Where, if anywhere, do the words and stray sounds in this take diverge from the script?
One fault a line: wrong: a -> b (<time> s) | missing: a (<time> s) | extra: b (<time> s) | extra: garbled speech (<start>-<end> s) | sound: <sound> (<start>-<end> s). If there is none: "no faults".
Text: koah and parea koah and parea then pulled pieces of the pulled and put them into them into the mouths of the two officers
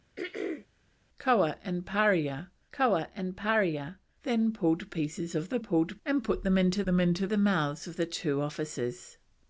sound: throat clearing (0.2-0.7 s)